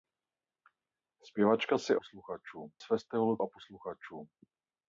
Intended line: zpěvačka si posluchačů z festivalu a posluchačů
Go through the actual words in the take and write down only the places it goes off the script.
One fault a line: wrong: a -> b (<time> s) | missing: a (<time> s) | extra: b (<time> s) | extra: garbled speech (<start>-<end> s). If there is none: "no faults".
no faults